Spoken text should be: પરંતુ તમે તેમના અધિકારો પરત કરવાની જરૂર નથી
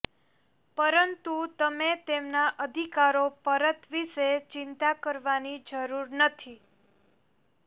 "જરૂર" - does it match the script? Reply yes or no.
yes